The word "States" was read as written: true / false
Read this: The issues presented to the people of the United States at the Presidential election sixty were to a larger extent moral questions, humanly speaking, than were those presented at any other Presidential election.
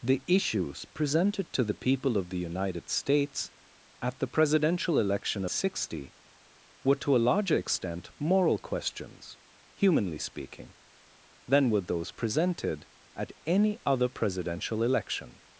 true